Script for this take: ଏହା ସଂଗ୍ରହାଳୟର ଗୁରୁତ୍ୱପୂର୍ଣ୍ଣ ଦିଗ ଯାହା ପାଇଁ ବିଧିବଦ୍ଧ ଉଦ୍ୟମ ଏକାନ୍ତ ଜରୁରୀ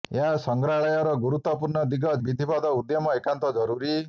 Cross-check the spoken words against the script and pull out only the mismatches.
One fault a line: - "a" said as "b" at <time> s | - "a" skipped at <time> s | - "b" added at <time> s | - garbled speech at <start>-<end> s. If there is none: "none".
- "ଯାହା ପାଇଁ" skipped at 2.1 s